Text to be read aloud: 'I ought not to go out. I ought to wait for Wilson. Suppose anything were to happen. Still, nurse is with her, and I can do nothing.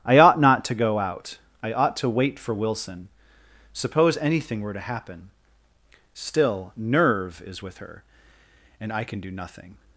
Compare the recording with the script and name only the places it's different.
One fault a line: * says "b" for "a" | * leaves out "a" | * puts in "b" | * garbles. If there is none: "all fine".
* says "nerve" for "nurse"